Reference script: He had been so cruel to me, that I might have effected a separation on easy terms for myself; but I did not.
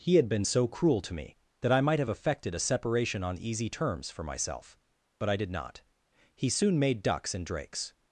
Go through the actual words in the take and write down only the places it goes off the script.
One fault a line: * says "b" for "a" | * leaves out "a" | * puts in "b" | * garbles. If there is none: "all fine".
* puts in "He soon made ducks and drakes"